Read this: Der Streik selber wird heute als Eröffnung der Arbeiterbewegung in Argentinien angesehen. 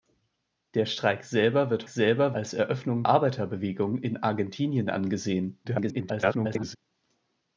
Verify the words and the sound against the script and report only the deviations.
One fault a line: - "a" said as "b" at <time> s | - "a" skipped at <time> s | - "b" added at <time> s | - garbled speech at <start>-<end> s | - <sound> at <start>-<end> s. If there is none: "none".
- "heute" said as "selber" at 1.9 s
- "der" skipped at 3.0 s
- garbled speech at 5.6-6.8 s